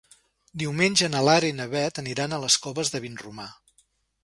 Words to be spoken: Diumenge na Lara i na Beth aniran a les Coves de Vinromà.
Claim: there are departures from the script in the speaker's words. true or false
false